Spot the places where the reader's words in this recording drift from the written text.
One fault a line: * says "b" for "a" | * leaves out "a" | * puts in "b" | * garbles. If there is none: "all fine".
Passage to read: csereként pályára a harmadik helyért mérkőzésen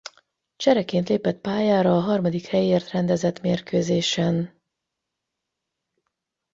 * puts in "lépett"
* puts in "rendezett"